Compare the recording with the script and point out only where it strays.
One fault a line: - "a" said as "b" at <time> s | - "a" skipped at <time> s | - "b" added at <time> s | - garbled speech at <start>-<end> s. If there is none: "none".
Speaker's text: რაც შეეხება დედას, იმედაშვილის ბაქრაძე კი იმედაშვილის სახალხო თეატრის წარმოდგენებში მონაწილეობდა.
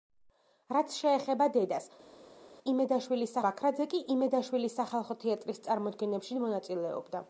none